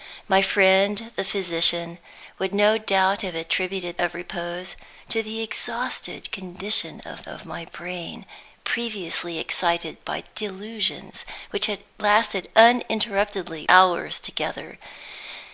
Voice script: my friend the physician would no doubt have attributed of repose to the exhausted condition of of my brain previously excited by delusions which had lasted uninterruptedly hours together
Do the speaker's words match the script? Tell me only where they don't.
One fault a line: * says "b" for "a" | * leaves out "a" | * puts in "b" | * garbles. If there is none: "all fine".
all fine